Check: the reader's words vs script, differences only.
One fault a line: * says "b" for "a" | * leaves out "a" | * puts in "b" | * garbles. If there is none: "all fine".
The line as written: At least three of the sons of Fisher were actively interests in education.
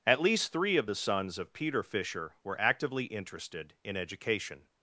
* puts in "Peter"
* says "interested" for "interests"